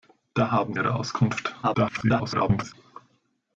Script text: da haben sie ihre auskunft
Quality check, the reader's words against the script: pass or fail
fail